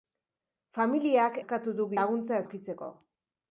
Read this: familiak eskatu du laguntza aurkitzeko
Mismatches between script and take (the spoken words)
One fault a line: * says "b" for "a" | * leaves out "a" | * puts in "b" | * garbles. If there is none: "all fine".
all fine